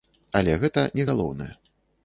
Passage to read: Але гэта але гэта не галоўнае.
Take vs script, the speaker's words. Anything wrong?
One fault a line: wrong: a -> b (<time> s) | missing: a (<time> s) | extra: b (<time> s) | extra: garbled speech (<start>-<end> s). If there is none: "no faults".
missing: але гэта (0.9 s)